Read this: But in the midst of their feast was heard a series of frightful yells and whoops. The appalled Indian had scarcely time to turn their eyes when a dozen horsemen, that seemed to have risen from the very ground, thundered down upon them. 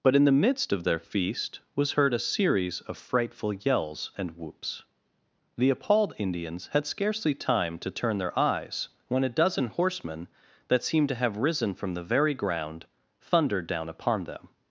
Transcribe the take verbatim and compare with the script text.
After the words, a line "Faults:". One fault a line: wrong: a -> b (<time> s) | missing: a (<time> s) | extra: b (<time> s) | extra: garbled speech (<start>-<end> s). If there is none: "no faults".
But in the midst of their feast was heard a series of frightful yells and whoops. The appalled Indians had scarcely time to turn their eyes when a dozen horsemen, that seemed to have risen from the very ground, thundered down upon them.
Faults:
wrong: Indian -> Indians (6.2 s)